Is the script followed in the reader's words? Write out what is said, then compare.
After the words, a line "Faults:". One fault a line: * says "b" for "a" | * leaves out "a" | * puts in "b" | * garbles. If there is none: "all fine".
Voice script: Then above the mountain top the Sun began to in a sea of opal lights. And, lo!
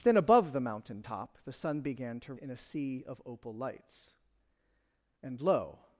Then above the mountain top the Sun began to in a sea of opal lights. And, lo!
Faults:
all fine